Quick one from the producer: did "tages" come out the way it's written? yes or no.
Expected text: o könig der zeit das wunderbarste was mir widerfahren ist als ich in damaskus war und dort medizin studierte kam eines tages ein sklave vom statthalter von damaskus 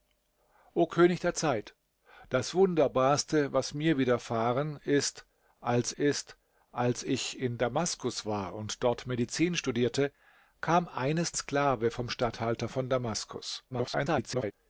no